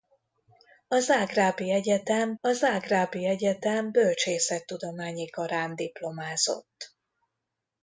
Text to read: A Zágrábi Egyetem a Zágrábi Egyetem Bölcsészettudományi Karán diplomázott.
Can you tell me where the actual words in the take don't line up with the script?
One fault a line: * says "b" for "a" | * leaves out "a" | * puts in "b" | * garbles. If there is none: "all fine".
all fine